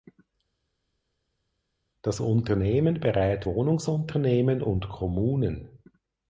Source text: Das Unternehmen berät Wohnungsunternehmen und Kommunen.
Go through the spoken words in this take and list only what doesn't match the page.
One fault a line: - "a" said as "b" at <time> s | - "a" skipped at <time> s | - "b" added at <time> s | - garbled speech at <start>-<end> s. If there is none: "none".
none